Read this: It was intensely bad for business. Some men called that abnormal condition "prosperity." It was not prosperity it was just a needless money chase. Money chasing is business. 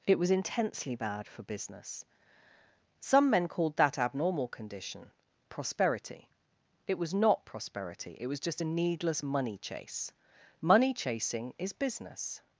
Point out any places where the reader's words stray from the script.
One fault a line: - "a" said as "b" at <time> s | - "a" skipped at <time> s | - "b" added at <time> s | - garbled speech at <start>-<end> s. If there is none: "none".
none